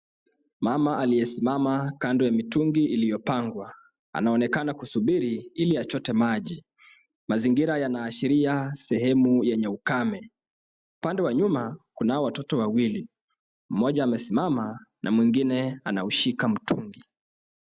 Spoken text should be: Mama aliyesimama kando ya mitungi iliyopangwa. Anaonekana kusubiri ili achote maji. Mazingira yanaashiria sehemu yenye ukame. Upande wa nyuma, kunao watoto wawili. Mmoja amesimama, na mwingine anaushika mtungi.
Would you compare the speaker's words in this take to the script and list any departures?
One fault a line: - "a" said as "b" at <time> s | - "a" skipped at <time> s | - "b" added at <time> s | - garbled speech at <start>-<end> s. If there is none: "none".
none